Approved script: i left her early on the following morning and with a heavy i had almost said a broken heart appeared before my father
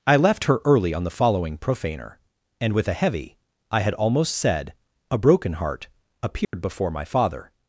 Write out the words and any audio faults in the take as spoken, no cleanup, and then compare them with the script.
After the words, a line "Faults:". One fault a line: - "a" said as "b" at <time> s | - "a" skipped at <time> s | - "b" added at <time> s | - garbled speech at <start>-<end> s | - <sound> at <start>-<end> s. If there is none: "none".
i left her early on the following profaner and with a heavy i had almost said a broken heart appeared before my father
Faults:
- "morning" said as "profaner" at 1.6 s
- dropout at 6.4-6.5 s